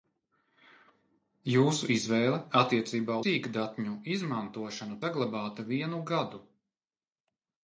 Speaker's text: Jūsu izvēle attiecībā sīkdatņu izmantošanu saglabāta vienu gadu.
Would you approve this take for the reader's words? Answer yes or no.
yes